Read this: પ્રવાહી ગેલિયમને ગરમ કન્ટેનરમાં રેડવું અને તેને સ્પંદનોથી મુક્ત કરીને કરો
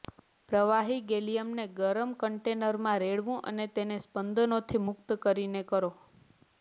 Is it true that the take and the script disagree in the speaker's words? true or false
false